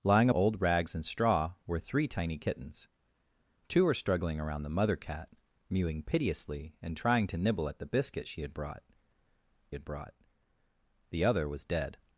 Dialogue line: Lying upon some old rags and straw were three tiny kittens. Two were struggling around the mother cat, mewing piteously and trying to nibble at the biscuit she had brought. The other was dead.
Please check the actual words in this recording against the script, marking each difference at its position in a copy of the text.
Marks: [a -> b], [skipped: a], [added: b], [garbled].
Lying [skipped: upon some] old rags and straw were three tiny kittens. Two were struggling around the mother cat, mewing piteously and trying to nibble at the biscuit she had brought. [added: had brought] The other was dead.